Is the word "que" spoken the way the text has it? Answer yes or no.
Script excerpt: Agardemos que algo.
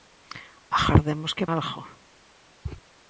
yes